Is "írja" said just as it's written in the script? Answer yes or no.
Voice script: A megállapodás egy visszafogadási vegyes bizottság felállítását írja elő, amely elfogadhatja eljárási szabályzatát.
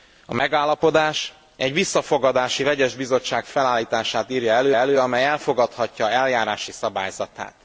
yes